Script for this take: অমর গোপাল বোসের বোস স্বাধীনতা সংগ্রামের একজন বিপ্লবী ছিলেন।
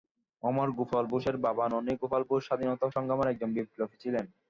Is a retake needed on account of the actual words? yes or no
yes